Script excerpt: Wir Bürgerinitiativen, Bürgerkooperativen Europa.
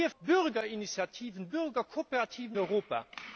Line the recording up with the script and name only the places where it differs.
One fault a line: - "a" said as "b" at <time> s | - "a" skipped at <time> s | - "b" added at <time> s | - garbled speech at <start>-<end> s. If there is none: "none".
none